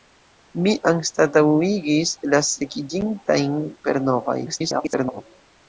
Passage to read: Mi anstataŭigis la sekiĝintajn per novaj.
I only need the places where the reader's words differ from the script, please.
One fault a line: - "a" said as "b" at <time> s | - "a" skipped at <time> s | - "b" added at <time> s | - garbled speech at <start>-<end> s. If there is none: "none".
- garbled speech at 4.5-5.2 s